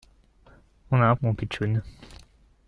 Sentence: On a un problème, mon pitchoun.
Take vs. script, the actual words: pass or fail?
fail